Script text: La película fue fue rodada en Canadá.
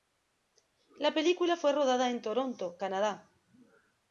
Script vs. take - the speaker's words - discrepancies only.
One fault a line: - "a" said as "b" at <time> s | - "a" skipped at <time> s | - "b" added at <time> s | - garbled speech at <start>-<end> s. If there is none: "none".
- "fue" skipped at 1.7 s
- "Toronto" added at 2.2 s